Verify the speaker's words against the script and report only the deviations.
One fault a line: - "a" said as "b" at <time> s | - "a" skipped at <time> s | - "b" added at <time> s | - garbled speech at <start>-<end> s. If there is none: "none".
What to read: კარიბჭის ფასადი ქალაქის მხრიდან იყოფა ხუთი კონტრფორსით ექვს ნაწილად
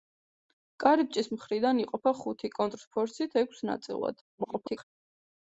- "ფასადი ქალაქის" skipped at 1.3 s
- garbled speech at 4.4-4.8 s